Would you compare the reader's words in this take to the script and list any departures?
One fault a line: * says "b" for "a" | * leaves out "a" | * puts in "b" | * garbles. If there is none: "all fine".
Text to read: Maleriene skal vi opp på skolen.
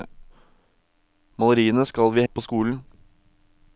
all fine